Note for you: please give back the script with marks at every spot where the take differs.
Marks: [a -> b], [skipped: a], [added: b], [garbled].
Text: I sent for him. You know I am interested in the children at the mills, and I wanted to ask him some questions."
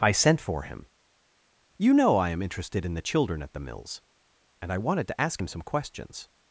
I sent for him. You know I am interested in the children at the mills, and I wanted to ask him some questions."